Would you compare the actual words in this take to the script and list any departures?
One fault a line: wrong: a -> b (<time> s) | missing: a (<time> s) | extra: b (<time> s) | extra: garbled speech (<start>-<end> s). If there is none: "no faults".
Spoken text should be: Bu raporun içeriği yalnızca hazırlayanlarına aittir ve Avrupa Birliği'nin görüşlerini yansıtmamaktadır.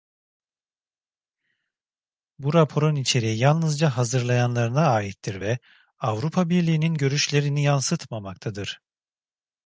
no faults